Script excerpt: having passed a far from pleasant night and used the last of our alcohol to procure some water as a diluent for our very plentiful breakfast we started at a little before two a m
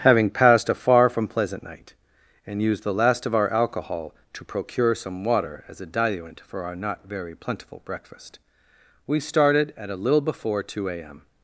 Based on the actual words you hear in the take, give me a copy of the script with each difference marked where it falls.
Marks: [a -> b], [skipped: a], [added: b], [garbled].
having passed a far from pleasant night and used the last of our alcohol to procure some water as a diluent for our [added: not] very plentiful breakfast we started at a little before two a m